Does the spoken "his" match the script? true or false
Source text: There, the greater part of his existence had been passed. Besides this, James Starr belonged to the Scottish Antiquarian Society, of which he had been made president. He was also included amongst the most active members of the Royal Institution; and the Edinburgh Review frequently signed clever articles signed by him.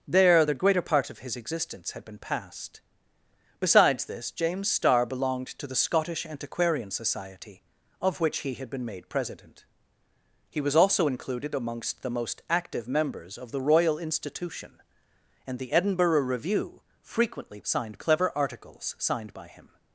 true